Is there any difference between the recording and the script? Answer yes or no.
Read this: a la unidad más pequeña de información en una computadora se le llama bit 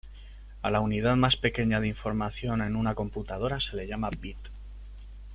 no